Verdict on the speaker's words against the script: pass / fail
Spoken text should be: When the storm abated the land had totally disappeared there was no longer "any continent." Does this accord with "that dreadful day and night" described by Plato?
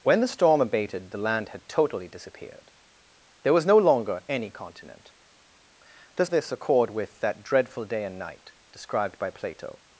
pass